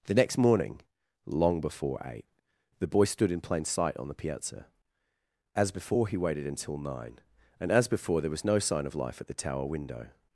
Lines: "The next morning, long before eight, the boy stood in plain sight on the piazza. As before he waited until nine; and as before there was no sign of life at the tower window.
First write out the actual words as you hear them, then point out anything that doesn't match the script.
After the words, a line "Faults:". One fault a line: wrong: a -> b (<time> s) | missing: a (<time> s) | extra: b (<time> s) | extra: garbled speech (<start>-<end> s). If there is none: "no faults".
"The next morning, long before eight, the boy stood in plain sight on the piazza. As before he waited until nine; and as before there was no sign of life at the tower window.
Faults:
no faults